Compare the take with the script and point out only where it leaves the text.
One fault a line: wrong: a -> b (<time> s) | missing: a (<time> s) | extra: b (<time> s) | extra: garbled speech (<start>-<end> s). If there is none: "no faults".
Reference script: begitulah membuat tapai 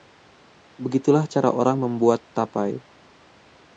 extra: cara orang (1.3 s)